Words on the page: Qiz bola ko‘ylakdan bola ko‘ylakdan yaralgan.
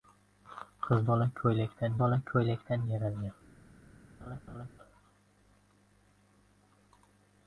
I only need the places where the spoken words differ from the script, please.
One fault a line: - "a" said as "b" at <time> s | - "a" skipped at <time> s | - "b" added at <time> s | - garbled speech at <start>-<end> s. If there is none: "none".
none